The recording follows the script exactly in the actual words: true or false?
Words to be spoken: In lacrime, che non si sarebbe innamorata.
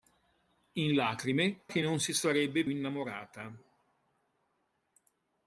true